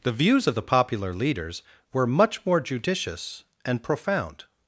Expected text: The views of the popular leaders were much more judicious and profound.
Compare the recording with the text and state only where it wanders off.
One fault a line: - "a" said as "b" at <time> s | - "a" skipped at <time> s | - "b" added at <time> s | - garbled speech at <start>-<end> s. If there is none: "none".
none